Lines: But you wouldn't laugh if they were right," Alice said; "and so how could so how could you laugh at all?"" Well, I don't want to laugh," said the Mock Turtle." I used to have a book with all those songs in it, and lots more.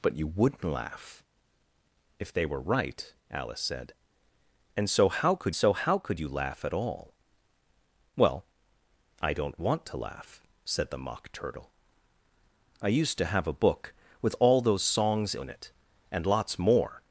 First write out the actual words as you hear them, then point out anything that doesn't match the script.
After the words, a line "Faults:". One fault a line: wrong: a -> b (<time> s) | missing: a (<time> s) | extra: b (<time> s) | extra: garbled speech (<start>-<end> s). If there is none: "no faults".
But you wouldn't laugh if they were right," Alice said; "and so how could so how could you laugh at all?"" Well, I don't want to laugh," said the Mock Turtle." I used to have a book with all those songs in it, and lots more.
Faults:
no faults